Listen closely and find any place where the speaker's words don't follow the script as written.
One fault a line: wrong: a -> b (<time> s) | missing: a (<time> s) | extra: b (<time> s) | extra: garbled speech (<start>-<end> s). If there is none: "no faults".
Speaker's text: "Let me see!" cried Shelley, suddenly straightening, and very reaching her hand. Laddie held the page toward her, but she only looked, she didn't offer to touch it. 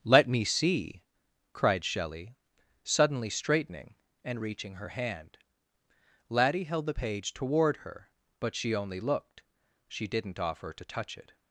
missing: very (4.4 s)